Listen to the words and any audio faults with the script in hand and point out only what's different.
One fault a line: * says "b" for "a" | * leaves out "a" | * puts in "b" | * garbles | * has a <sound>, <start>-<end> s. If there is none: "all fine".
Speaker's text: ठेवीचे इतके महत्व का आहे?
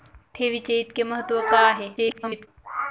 * garbles